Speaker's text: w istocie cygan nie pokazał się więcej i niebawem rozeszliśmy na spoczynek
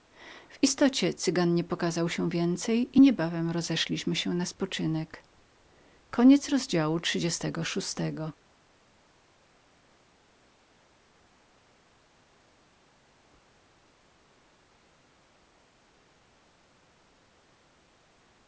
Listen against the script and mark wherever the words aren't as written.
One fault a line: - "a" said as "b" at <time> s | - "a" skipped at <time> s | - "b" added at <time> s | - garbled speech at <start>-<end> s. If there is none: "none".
- "się" added at 4.1 s